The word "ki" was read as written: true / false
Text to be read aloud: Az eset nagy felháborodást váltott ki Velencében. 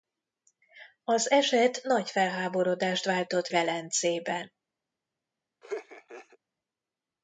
false